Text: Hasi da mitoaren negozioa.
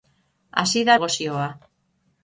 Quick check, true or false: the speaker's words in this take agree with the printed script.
false